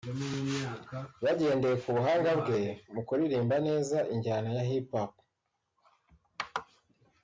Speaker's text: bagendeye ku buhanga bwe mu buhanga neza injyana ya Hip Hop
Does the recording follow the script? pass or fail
fail